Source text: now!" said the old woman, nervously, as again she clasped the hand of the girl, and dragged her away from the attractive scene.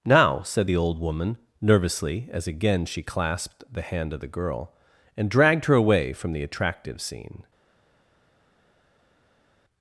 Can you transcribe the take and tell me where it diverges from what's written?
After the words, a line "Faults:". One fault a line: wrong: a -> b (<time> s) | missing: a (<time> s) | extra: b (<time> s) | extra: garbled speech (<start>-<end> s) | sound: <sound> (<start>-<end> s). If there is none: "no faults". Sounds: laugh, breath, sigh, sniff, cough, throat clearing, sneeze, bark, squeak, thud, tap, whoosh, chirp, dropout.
now!" said the old woman, nervously, as again she clasped the hand of the girl, and dragged her away from the attractive scene.
Faults:
no faults